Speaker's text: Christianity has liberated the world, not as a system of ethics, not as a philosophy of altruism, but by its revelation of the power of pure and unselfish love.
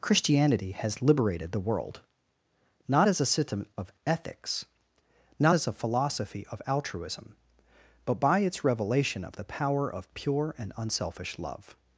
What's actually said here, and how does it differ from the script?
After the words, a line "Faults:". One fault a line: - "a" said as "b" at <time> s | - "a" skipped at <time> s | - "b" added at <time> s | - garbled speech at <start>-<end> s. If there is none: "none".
Christianity has liberated the world, not as a system of ethics, not as a philosophy of altruism, but by its revelation of the power of pure and unselfish love.
Faults:
none